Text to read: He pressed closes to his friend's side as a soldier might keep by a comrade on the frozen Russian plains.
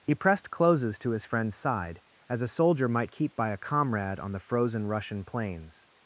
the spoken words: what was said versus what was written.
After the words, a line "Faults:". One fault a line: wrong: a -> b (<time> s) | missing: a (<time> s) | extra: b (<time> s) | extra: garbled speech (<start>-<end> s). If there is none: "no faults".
He pressed closes to his friend's side as a soldier might keep by a comrade on the frozen Russian plains.
Faults:
no faults